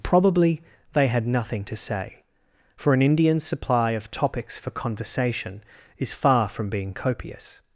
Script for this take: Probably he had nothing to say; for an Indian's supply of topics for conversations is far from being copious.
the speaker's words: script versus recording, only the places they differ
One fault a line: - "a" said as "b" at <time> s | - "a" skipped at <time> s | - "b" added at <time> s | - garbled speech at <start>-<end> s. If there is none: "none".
- "he" said as "they" at 0.9 s
- "conversations" said as "conversation" at 4.7 s